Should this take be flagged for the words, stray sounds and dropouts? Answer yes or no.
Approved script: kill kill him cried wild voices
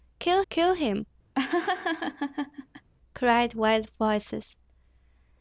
yes